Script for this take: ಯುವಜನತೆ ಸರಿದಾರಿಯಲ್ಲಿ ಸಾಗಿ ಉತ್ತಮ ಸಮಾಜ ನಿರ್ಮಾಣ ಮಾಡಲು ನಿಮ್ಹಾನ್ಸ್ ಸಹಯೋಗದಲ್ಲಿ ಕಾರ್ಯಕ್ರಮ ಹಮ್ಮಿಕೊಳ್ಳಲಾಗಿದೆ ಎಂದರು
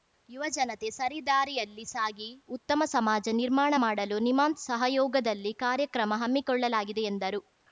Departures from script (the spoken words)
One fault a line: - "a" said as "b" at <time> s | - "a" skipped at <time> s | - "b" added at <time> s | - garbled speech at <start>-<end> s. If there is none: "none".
none